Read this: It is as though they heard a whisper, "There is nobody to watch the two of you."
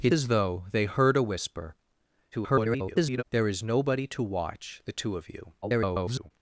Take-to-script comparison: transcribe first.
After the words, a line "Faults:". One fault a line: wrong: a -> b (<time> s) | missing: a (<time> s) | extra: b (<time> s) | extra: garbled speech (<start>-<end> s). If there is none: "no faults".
It as though they heard a whisper, [garbled] "There is nobody to watch the two of you." [garbled]
Faults:
missing: is (0.1 s)
extra: garbled speech (2.3-3.2 s)
extra: garbled speech (5.6-6.3 s)